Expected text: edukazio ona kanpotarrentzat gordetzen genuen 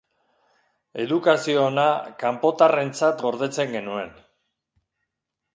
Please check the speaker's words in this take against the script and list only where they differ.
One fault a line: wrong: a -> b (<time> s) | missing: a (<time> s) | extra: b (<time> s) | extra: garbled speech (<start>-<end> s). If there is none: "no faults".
no faults